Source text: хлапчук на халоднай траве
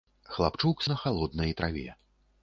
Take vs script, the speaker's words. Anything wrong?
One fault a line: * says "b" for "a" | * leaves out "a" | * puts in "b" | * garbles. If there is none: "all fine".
all fine